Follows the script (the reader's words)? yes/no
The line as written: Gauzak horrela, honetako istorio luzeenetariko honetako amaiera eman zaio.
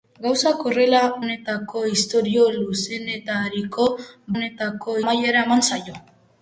yes